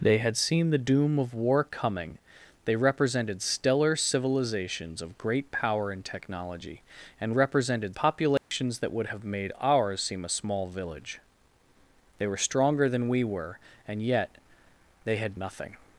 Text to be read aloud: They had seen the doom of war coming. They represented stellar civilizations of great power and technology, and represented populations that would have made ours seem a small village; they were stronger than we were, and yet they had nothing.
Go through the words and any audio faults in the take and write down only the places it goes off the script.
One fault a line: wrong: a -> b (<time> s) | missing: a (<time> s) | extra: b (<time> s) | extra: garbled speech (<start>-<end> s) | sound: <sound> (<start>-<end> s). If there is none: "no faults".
sound: dropout (8.4-8.5 s)